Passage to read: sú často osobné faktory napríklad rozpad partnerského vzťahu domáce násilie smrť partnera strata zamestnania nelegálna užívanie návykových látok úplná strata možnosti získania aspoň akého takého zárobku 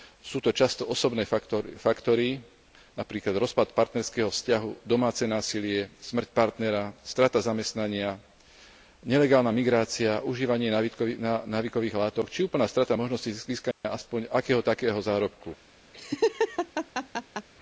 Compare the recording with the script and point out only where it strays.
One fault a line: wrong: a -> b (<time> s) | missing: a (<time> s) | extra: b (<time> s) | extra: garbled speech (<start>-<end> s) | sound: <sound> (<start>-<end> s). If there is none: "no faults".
extra: to (0.4 s)
extra: migrácia (9.5 s)
extra: či (12.3 s)
sound: dropout (13.7-13.8 s)
sound: laugh (15.9-17.5 s)